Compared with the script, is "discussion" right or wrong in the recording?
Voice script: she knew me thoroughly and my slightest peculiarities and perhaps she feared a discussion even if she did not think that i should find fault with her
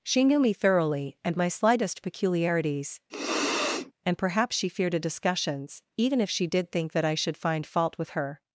wrong